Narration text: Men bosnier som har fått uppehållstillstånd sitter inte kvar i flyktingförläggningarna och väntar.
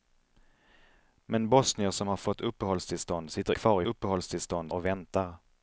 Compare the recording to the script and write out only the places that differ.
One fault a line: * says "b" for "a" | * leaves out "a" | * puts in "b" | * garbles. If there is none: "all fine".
* leaves out "inte"
* says "uppehållstillstånd" for "flyktingförläggningarna"